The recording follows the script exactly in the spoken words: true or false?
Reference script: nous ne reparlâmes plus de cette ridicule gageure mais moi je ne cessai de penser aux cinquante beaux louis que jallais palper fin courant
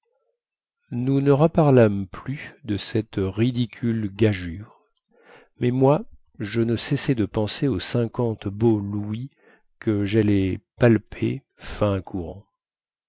true